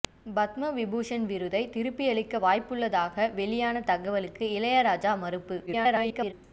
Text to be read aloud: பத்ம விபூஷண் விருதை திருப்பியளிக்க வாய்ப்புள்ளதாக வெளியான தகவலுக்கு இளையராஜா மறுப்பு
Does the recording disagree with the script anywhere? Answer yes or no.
yes